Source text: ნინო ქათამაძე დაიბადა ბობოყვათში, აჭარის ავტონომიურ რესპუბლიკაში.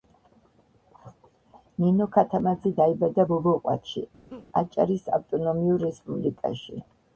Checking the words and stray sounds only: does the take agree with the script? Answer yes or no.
no